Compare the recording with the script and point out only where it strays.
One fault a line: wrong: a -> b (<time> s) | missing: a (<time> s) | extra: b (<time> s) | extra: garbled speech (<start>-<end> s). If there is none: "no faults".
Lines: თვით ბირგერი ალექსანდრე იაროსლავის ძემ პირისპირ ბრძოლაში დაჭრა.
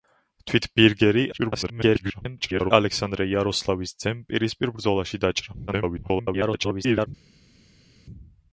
extra: garbled speech (1.3-2.7 s)
extra: garbled speech (5.7-7.1 s)